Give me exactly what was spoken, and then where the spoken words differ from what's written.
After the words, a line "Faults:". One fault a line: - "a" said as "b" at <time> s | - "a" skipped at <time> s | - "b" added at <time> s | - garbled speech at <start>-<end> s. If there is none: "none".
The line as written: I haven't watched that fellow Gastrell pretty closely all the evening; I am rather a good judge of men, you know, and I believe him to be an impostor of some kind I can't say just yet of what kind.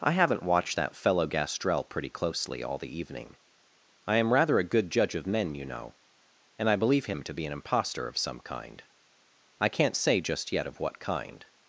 I haven't watched that fellow Gastrell pretty closely all the evening; I am rather a good judge of men, you know, and I believe him to be an impostor of some kind I can't say just yet of what kind.
Faults:
none